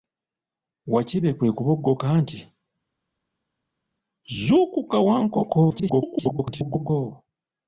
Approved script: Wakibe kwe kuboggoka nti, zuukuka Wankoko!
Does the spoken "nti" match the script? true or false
true